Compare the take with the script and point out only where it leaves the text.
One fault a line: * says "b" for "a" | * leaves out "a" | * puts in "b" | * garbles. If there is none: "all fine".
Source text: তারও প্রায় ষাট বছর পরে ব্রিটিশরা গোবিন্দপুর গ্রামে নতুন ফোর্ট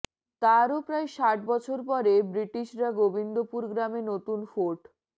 all fine